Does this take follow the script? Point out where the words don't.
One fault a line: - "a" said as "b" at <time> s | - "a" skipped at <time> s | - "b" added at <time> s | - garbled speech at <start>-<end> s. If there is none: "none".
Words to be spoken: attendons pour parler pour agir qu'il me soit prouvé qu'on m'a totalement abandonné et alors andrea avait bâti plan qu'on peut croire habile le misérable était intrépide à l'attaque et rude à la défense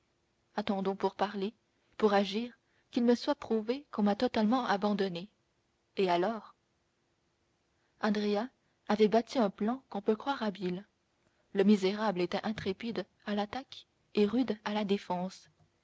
- "un" added at 9.4 s